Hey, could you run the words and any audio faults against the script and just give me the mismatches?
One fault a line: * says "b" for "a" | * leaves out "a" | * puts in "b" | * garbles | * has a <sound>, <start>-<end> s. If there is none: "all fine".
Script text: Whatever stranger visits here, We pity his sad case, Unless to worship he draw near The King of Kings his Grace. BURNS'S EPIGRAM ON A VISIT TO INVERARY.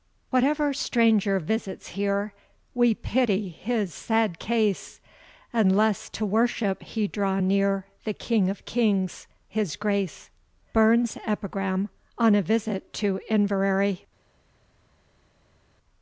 all fine